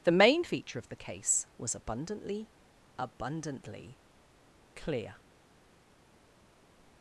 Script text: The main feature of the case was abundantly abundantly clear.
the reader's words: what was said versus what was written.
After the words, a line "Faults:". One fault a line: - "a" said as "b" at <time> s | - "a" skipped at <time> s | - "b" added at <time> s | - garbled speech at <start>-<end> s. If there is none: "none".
The main feature of the case was abundantly abundantly clear.
Faults:
none